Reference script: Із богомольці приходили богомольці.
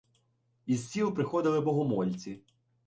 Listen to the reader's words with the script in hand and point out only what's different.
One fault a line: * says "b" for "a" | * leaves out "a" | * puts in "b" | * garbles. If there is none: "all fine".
* says "сіл" for "богомольці"